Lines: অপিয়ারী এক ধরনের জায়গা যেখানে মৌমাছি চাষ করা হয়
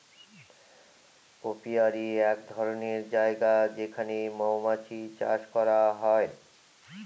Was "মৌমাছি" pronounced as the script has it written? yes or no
yes